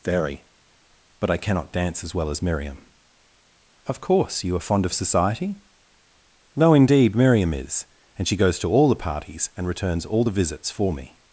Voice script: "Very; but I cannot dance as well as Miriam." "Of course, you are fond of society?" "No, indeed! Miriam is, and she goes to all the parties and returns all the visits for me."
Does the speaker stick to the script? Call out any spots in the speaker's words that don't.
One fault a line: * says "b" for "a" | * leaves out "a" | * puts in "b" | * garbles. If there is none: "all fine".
all fine